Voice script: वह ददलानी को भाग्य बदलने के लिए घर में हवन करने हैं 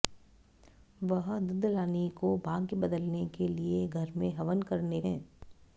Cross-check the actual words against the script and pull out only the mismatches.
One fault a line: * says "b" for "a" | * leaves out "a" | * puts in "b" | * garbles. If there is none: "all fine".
all fine